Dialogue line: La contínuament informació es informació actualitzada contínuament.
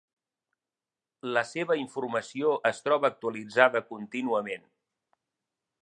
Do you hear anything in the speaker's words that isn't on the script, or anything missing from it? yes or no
yes